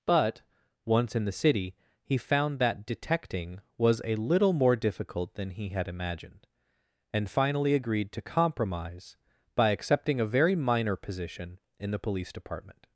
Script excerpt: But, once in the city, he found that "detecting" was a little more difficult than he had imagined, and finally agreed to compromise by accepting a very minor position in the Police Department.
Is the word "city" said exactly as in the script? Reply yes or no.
yes